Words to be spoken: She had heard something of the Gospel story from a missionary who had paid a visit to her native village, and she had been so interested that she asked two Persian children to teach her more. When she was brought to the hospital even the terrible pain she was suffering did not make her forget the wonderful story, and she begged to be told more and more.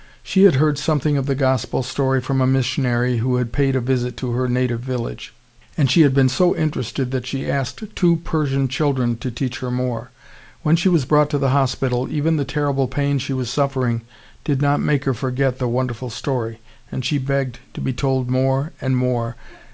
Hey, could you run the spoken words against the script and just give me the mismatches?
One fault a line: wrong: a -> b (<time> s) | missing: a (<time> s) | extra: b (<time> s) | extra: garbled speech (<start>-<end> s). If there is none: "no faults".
no faults